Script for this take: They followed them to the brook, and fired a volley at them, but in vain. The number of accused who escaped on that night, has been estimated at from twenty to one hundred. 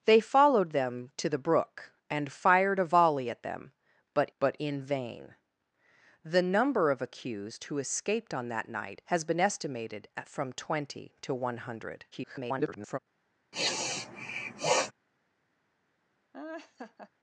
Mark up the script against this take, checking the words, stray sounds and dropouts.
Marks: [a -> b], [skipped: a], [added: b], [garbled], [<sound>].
They followed them to the brook, and fired a volley at them, but [added: but] in vain. The number of accused who escaped on that night, has been estimated at from twenty to one hundred. [garbled] [sniff] [laugh]